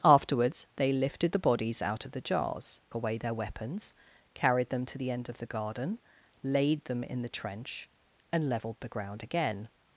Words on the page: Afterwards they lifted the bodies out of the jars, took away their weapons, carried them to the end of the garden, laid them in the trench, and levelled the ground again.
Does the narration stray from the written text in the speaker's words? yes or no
yes